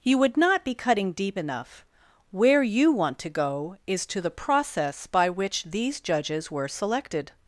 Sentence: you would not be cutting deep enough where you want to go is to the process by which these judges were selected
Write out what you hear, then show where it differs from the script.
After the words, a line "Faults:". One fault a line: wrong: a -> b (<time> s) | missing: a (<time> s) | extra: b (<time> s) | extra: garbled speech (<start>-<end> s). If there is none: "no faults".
you would not be cutting deep enough where you want to go is to the process by which these judges were selected
Faults:
no faults